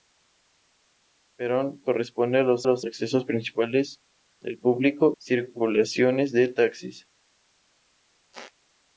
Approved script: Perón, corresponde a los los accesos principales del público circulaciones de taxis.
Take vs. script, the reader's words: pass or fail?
pass